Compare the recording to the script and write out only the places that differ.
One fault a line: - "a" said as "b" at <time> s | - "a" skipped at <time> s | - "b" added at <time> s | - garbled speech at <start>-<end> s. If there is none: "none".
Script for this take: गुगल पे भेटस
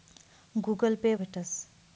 none